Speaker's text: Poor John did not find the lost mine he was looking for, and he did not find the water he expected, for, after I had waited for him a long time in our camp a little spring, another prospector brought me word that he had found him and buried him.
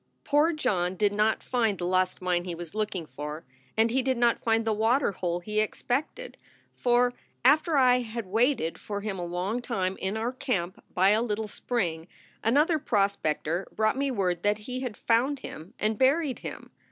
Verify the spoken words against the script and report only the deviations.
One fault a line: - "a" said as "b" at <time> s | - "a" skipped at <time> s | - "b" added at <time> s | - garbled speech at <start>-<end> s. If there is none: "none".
- "hole" added at 5.1 s
- "by" added at 10.9 s